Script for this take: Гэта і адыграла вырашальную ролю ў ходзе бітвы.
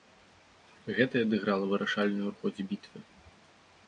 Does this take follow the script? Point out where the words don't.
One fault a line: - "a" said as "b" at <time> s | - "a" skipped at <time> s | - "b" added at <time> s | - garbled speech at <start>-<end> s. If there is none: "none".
- "ролю" skipped at 2.3 s